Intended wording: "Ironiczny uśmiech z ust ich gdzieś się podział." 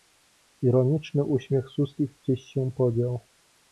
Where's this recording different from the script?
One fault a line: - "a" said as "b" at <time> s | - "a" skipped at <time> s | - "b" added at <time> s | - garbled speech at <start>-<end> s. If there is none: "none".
none